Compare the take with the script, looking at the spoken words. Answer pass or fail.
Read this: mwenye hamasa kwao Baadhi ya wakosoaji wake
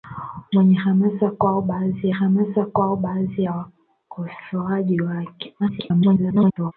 fail